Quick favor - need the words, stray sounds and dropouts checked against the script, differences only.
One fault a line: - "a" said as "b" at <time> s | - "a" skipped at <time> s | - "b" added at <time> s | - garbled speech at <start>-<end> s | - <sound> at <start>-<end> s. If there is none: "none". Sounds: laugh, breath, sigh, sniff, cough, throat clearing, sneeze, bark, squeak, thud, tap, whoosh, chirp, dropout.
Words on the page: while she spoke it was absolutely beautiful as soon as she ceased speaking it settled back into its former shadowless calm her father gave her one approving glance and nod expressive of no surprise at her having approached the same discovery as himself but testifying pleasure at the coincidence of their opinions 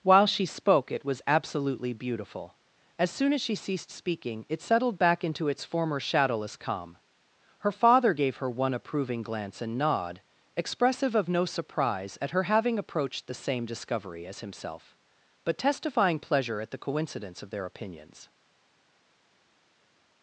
none